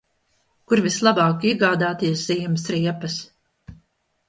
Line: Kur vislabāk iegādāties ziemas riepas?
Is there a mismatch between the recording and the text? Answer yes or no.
no